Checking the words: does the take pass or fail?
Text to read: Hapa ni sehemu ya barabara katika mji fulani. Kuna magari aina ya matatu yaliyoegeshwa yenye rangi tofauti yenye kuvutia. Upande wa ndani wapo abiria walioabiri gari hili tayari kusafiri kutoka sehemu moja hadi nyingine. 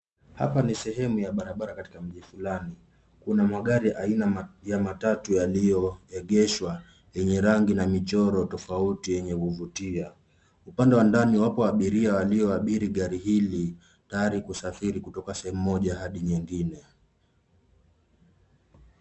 fail